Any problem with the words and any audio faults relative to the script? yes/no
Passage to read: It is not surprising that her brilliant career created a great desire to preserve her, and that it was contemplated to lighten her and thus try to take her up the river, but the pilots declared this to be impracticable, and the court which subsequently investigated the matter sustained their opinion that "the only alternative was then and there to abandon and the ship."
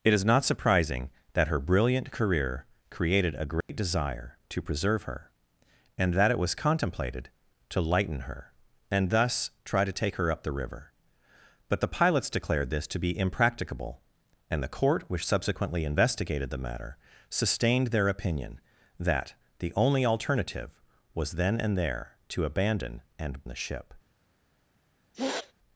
yes